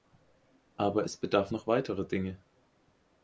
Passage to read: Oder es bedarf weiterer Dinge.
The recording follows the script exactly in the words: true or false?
false